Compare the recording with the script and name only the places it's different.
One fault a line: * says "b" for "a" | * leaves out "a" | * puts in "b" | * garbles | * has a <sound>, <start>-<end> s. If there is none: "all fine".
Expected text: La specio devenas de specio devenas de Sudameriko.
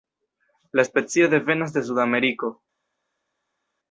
* leaves out "specio devenas de"